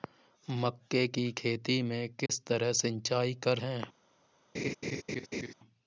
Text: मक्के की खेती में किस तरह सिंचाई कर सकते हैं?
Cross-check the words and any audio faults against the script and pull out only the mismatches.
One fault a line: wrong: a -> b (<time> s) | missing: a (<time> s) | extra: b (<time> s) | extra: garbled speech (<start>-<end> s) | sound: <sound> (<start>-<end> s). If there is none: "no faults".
sound: dropout (2.3-2.3 s)
missing: सकते (3.6 s)
sound: laugh (4.5-5.5 s)